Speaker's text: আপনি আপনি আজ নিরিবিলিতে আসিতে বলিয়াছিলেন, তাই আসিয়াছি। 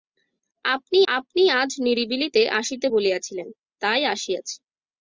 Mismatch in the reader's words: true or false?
false